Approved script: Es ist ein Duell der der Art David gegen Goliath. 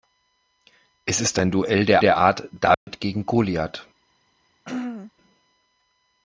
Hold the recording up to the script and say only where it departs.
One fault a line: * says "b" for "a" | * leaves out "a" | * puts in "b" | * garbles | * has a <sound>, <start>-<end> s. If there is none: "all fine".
* has a dropout, 2.7-2.9 s
* has a throat clearing, 4.6-5.1 s